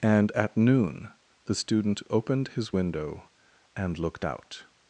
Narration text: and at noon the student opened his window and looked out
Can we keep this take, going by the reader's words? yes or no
yes